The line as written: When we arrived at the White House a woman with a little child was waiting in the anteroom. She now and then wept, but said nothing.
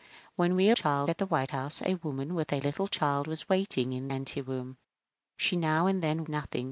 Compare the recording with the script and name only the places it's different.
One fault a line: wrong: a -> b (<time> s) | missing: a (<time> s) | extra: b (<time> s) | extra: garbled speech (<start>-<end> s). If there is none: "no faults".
wrong: arrived -> child (0.7 s)
missing: the (4.1 s)
missing: wept but said (6.2 s)